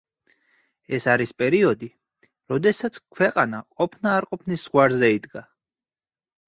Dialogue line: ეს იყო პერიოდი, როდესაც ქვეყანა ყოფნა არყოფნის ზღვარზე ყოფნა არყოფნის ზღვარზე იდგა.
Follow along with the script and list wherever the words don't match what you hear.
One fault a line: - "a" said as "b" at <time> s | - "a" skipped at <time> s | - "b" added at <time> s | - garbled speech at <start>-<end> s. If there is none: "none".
- "იყო" said as "არის" at 1.1 s
- "ყოფნა არყოფნის ზღვარზე" skipped at 5.1 s